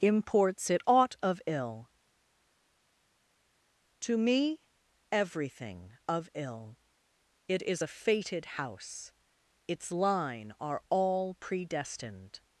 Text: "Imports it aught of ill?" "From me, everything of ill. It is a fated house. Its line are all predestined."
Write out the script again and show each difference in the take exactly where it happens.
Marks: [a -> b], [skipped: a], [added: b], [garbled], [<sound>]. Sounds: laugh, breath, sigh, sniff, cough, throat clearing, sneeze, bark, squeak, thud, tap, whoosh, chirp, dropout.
"Imports it aught of ill?" ["From -> To] me, everything of ill. It is a fated house. Its line are all predestined."